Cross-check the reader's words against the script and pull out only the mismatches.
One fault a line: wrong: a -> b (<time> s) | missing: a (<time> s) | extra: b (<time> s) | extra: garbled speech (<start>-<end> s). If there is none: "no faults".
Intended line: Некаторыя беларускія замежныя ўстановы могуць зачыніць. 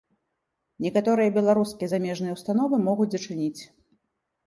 no faults